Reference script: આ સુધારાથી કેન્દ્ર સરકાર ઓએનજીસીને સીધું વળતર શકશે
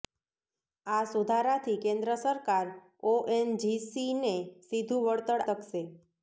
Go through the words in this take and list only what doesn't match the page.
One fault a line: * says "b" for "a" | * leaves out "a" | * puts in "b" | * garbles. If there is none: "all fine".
all fine